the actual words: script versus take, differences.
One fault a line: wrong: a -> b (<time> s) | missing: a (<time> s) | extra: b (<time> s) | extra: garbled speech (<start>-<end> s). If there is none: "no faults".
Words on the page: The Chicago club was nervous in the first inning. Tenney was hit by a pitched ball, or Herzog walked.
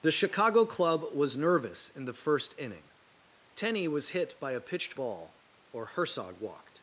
no faults